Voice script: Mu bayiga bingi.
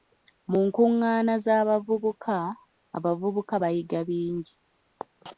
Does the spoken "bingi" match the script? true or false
true